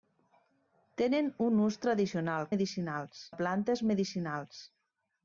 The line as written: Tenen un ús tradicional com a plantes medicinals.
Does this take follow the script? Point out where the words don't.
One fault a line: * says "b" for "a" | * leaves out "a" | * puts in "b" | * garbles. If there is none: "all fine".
* says "medicinals" for "com"